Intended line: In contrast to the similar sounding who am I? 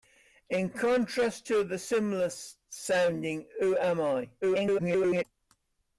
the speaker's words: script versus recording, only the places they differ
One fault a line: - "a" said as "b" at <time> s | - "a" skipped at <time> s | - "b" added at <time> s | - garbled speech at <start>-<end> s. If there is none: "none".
- garbled speech at 4.4-5.2 s